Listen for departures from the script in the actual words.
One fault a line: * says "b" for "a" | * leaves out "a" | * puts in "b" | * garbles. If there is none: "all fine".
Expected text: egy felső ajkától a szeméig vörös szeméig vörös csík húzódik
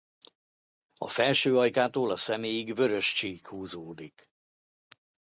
* says "a" for "egy"
* leaves out "szeméig vörös"